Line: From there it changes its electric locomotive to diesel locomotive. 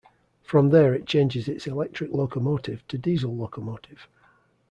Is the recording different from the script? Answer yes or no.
no